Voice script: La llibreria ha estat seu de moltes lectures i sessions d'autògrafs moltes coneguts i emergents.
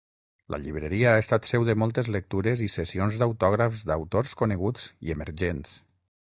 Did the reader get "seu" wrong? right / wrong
right